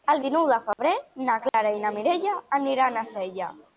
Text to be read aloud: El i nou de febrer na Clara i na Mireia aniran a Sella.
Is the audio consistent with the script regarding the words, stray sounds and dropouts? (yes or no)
no